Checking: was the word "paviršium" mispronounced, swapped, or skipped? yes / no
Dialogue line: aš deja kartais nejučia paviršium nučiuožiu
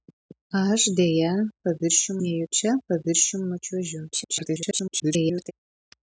no